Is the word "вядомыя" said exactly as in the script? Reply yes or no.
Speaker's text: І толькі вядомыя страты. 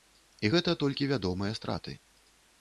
yes